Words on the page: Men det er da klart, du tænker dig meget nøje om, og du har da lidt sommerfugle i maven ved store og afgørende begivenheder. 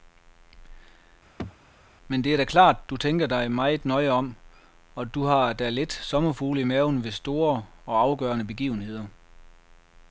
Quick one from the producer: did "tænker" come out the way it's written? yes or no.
yes